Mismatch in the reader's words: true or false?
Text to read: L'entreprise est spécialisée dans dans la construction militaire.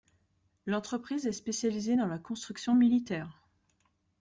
true